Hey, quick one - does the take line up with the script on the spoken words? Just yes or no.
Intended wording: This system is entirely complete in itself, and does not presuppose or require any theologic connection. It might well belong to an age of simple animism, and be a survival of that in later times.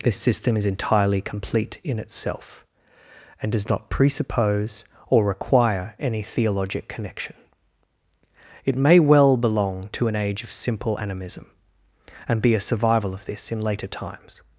no